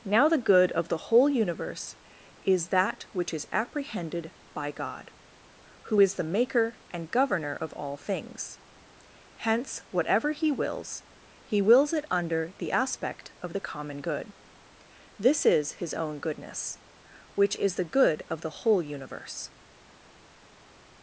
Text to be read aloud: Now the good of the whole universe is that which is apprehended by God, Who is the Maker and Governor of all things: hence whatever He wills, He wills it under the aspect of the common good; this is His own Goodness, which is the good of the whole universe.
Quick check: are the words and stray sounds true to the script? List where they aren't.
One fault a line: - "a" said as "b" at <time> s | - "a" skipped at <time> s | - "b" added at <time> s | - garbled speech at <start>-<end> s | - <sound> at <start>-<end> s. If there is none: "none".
none